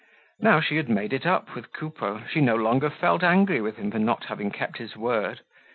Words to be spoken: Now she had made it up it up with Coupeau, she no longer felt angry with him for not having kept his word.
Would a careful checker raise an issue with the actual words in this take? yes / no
yes